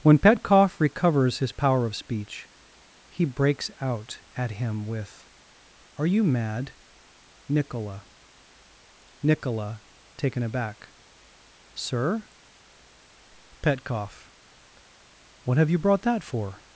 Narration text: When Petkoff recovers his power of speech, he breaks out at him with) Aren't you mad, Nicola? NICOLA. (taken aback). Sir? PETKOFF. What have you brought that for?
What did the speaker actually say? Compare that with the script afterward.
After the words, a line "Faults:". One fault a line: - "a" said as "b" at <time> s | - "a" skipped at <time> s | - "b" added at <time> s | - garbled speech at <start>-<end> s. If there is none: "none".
When Petkoff recovers his power of speech, he breaks out at him with) Are you mad, Nicola? NICOLA. (taken aback). Sir? PETKOFF. What have you brought that for?
Faults:
- "Aren't" said as "Are" at 6.0 s